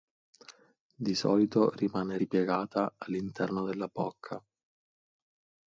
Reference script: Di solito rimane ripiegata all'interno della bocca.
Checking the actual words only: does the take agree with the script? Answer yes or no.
yes